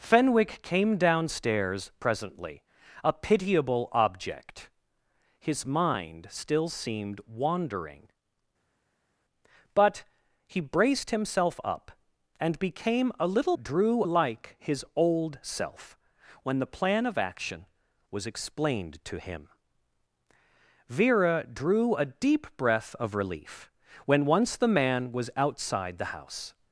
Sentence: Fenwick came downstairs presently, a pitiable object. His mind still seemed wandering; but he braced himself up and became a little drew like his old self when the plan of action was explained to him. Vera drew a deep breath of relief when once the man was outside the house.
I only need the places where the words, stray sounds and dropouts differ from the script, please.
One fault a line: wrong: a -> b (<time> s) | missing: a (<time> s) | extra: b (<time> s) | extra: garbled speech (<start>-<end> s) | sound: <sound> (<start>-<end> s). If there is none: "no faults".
no faults